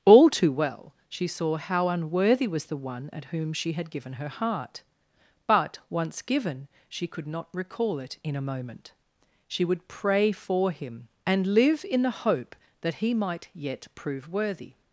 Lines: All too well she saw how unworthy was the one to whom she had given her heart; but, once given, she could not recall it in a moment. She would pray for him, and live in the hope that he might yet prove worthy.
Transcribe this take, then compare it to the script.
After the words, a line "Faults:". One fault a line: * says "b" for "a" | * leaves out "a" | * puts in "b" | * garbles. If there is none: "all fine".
All too well she saw how unworthy was the one at whom she had given her heart; but, once given, she could not recall it in a moment. She would pray for him, and live in the hope that he might yet prove worthy.
Faults:
* says "at" for "to"